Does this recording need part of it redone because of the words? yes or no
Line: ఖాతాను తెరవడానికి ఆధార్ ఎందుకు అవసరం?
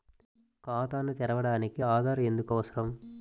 no